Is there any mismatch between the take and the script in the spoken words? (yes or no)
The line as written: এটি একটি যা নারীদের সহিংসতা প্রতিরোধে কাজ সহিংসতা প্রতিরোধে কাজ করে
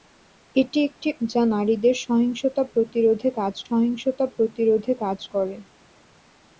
no